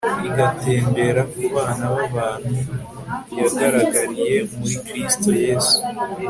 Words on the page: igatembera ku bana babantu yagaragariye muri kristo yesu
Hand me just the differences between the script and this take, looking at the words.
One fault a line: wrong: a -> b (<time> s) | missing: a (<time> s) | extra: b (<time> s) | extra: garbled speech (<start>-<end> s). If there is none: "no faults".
no faults